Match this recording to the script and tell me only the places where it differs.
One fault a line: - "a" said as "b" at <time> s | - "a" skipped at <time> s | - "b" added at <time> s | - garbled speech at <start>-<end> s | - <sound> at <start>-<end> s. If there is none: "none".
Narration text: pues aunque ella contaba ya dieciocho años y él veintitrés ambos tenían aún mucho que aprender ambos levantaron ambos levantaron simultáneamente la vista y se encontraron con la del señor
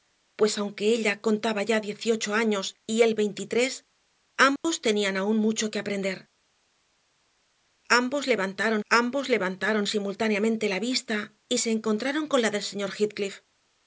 - dropout at 4.6-4.6 s